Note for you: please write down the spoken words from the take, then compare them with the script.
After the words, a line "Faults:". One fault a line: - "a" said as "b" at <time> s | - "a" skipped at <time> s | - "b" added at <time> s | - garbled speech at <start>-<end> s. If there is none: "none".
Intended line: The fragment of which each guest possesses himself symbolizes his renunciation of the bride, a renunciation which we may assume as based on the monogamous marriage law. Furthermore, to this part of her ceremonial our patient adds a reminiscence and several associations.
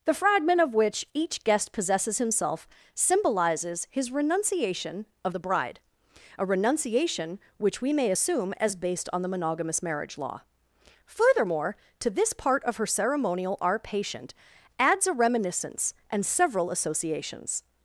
The fragment of which each guest possesses himself symbolizes his renunciation of the bride, a renunciation which we may assume as based on the monogamous marriage law. Furthermore, to this part of her ceremonial our patient adds a reminiscence and several associations.
Faults:
none